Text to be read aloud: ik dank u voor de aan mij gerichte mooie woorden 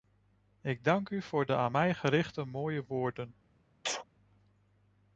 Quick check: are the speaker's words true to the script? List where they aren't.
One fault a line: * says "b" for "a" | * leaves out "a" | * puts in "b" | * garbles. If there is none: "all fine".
all fine